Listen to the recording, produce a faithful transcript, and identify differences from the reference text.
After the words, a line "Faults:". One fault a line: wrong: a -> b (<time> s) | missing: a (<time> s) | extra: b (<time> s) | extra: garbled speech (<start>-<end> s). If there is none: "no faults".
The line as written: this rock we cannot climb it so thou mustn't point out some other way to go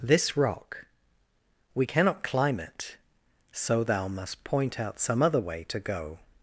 this rock we cannot climb it so thou must point out some other way to go
Faults:
wrong: mustn't -> must (4.1 s)